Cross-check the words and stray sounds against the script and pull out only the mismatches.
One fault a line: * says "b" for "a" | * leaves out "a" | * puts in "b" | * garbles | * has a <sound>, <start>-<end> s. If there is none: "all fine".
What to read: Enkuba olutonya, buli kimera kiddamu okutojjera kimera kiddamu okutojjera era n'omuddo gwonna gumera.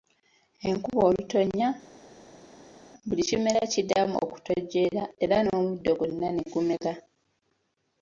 * leaves out "kimera kiddamu okutojjera"
* puts in "ne"